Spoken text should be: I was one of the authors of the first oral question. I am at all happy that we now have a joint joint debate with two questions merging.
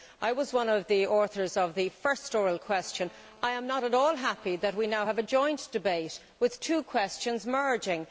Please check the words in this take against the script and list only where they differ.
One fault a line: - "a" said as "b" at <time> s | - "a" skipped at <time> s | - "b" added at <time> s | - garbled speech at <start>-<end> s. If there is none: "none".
- "not" added at 3.7 s
- "joint" skipped at 5.7 s